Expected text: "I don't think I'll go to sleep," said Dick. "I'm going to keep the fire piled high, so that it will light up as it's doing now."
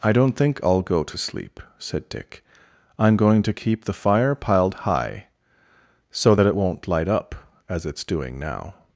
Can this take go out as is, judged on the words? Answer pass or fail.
fail